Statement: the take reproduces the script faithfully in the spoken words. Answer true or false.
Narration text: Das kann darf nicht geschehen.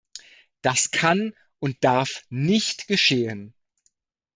false